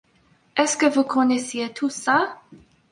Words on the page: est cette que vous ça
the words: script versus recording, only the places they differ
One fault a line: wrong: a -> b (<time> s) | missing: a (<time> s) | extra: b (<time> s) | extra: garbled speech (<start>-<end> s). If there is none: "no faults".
wrong: cette -> ce (0.7 s)
extra: connaissiez tout (1.0 s)